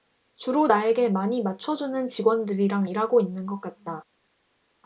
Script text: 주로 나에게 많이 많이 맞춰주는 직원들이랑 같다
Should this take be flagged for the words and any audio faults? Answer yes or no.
yes